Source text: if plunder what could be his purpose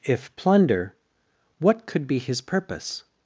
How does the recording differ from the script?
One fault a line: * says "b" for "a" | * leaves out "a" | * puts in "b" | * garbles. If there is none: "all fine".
all fine